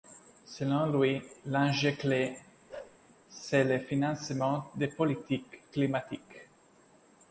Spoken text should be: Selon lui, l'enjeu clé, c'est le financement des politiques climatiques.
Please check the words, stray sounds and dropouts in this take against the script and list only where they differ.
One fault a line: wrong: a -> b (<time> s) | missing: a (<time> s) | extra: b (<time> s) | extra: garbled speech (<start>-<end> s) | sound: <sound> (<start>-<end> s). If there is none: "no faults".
sound: bark (2.7-3.0 s)